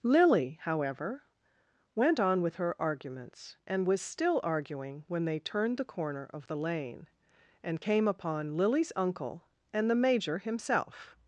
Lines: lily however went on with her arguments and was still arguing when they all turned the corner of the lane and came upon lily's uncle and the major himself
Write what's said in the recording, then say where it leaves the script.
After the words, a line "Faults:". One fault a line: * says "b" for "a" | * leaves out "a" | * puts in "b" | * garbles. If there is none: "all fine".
lily however went on with her arguments and was still arguing when they turned the corner of the lane and came upon lily's uncle and the major himself
Faults:
* leaves out "all"